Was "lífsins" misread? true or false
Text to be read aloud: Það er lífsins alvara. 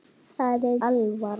true